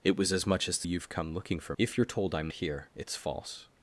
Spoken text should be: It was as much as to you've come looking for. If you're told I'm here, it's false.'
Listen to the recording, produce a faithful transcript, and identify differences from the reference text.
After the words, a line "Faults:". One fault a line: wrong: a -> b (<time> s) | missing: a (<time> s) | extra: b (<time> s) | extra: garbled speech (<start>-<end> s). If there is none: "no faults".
It was as much as to you've come looking for. If you're told I'm here, it's false.'
Faults:
no faults